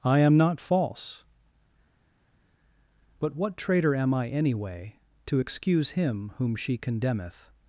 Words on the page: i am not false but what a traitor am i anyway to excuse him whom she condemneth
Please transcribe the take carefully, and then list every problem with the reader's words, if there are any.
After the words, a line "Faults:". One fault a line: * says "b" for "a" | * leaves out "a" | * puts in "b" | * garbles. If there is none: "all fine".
i am not false but what traitor am i anyway to excuse him whom she condemneth
Faults:
* leaves out "a"